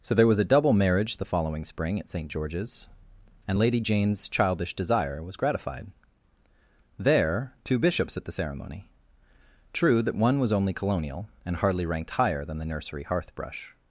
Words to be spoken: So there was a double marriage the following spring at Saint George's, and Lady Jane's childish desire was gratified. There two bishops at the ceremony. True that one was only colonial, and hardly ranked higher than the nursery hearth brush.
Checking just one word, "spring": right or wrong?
right